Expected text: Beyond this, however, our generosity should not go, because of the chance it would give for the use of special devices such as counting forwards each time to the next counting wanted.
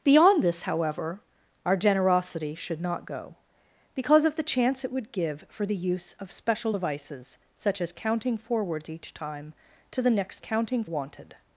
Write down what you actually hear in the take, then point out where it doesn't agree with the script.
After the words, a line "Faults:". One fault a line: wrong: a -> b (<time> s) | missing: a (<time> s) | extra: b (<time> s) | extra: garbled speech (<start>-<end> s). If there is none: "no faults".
Beyond this, however, our generosity should not go, because of the chance it would give for the use of special devices such as counting forwards each time to the next counting wanted.
Faults:
no faults